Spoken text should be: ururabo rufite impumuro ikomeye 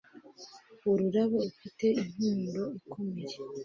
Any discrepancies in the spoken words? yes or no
no